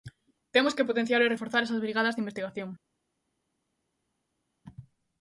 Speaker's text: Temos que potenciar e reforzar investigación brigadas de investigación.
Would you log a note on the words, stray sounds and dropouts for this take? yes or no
yes